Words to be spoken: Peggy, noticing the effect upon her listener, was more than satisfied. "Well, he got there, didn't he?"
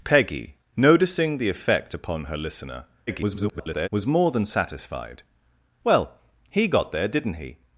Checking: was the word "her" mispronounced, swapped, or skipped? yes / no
no